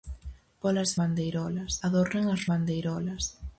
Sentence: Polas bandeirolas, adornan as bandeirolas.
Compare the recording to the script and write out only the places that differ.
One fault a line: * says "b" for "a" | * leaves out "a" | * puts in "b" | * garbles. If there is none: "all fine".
all fine